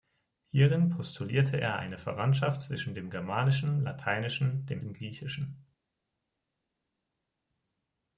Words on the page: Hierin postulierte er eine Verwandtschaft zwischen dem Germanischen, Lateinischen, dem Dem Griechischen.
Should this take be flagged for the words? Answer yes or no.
no